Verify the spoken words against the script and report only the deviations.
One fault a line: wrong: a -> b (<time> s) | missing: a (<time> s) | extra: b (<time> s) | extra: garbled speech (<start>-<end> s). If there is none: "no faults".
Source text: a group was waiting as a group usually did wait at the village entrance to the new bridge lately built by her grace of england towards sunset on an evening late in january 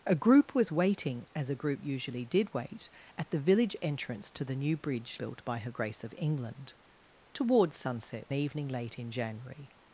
missing: lately (5.2 s)
missing: on an (8.3 s)